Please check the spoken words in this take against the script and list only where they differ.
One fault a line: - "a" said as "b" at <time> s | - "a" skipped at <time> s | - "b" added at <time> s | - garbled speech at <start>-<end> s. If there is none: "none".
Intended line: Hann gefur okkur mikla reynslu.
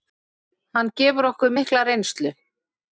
none